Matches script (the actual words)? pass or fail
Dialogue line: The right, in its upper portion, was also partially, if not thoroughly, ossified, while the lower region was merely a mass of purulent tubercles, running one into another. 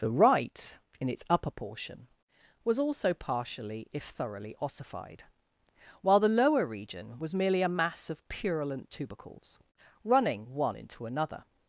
fail